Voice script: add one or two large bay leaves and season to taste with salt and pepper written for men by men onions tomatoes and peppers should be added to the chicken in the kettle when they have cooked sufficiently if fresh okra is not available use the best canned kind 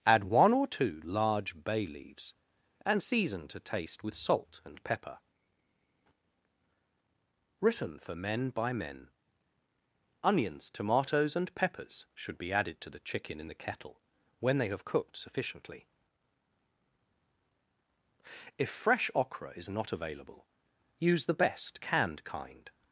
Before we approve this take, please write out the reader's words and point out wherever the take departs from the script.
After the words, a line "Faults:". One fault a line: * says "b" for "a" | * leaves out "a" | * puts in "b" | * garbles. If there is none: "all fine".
add one or two large bay leaves and season to taste with salt and pepper written for men by men onions tomatoes and peppers should be added to the chicken in the kettle when they have cooked sufficiently if fresh okra is not available use the best canned kind
Faults:
all fine